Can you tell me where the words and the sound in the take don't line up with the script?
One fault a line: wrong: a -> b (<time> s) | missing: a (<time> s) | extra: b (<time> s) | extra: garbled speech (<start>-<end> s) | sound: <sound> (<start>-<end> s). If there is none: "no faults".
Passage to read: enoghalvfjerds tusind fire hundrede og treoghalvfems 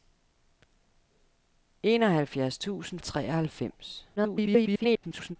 missing: fire hundrede (3.0 s)
extra: garbled speech (4.2-5.4 s)